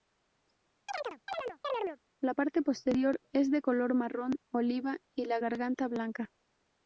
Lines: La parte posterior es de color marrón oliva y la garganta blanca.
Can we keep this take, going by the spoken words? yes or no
yes